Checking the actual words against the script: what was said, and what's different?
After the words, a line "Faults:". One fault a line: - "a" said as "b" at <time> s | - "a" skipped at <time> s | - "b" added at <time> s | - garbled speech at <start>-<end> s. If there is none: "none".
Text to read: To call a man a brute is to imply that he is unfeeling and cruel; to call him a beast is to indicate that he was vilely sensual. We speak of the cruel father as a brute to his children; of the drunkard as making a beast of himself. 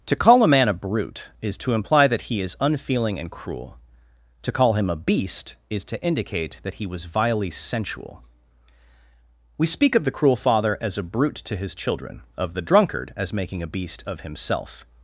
To call a man a brute is to imply that he is unfeeling and cruel; to call him a beast is to indicate that he was vilely sensual. We speak of the cruel father as a brute to his children; of the drunkard as making a beast of himself.
Faults:
none